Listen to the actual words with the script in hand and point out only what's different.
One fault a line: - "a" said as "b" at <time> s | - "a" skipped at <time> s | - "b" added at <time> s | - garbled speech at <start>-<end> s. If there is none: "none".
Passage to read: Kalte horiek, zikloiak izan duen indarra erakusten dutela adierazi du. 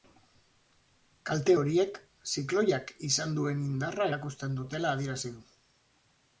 none